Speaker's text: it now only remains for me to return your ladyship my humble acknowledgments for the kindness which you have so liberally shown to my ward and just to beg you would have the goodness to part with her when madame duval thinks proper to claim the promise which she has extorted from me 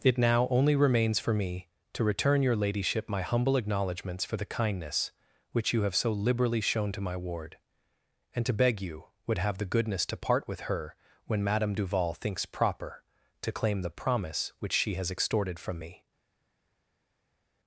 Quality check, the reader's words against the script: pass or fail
fail